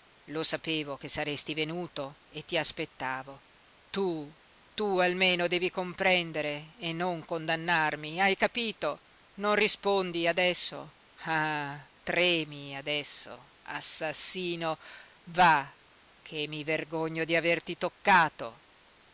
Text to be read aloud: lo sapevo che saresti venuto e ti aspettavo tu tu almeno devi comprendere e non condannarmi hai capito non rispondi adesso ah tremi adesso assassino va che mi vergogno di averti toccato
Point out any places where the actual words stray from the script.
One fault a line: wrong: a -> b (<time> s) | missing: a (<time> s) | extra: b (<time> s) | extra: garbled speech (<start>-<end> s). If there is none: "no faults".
no faults